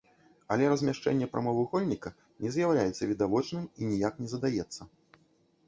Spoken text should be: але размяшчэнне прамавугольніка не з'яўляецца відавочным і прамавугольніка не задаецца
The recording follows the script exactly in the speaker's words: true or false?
false